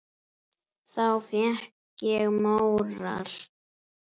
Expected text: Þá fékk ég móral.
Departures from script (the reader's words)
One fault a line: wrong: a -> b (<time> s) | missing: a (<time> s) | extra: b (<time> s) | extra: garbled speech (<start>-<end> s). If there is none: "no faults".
no faults